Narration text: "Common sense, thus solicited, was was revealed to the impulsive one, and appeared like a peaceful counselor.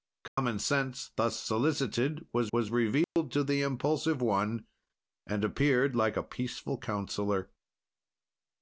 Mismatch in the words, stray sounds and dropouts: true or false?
true